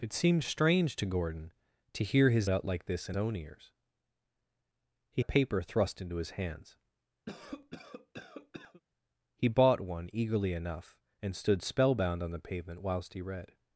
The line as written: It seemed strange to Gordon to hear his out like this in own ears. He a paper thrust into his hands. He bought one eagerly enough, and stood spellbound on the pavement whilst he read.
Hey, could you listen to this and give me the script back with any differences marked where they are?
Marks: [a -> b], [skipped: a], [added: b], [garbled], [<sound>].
It seemed strange to Gordon to hear his out like this in own ears. He a paper thrust into his hands. [cough] He bought one eagerly enough, and stood spellbound on the pavement whilst he read.